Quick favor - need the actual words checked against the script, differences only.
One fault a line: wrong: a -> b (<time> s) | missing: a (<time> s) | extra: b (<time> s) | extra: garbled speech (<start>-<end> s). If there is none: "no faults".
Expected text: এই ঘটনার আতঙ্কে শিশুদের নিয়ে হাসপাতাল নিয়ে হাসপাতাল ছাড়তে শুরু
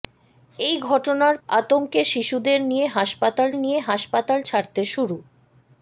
no faults